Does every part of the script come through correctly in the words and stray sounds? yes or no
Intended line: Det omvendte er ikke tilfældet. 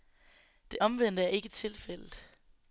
yes